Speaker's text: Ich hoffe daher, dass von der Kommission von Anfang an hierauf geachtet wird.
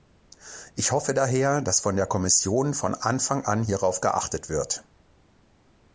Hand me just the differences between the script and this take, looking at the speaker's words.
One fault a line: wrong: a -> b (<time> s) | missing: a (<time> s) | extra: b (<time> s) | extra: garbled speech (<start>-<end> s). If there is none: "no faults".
no faults